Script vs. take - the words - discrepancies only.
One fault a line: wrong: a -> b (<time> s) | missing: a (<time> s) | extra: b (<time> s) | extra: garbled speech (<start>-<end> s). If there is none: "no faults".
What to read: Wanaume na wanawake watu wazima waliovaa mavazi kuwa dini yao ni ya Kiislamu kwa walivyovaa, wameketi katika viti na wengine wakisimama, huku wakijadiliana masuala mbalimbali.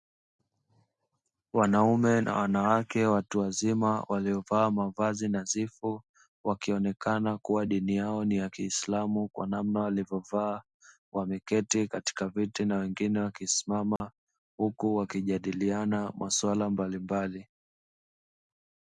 extra: nadhifu wakionekana (5.3 s)
extra: namna (9.5 s)